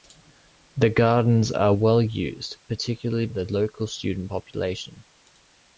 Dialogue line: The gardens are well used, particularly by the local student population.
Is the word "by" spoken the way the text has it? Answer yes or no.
no